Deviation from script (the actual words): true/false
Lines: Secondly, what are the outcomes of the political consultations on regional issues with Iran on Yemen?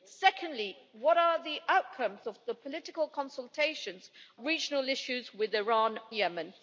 true